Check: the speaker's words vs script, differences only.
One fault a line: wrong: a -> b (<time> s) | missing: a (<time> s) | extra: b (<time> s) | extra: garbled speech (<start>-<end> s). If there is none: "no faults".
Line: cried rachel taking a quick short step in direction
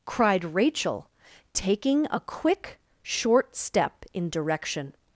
no faults